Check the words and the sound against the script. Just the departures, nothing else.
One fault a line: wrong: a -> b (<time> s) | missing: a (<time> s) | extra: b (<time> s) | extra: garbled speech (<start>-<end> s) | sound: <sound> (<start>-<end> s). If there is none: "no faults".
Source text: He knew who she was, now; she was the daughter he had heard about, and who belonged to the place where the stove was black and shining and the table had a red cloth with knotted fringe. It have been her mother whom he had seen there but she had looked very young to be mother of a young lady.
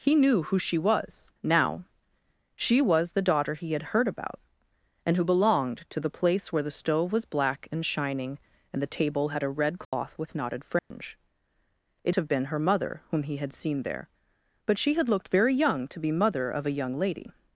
sound: dropout (9.8-9.9 s)
sound: dropout (10.8-10.9 s)